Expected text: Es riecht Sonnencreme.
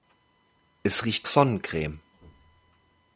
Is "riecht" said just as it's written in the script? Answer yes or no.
yes